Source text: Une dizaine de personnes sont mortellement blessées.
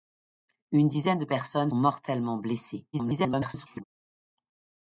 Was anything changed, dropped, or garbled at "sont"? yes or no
yes